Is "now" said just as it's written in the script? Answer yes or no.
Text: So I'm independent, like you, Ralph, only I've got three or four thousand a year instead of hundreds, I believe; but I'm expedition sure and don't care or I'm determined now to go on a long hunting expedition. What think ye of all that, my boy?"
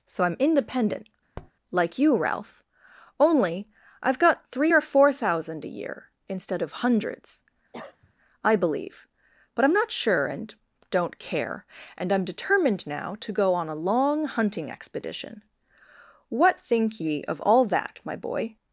yes